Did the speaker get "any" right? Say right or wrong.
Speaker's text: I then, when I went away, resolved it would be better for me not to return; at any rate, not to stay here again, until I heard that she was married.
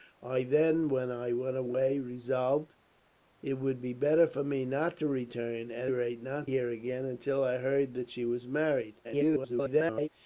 wrong